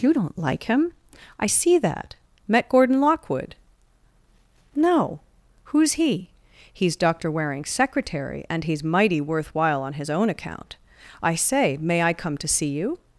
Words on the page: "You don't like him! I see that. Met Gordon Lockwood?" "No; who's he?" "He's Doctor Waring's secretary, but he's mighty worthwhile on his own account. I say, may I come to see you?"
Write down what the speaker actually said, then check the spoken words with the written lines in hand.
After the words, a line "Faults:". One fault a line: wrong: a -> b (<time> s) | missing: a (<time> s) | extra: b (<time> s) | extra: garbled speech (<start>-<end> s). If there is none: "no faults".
"You don't like him! I see that. Met Gordon Lockwood?" "No; who's he?" "He's Doctor Waring's secretary, and he's mighty worthwhile on his own account. I say, may I come to see you?"
Faults:
wrong: but -> and (8.5 s)